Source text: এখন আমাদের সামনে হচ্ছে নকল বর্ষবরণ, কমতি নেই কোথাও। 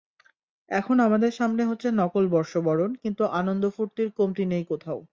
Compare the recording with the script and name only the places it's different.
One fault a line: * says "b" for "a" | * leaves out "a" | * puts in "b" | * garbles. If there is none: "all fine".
* puts in "কিন্তু আনন্দ ফুর্তির"